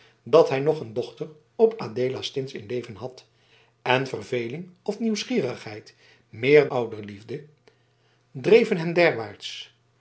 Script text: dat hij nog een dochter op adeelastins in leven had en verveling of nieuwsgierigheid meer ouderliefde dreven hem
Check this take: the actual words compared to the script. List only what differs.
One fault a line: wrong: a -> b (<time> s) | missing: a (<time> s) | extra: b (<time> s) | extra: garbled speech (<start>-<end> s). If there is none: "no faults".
no faults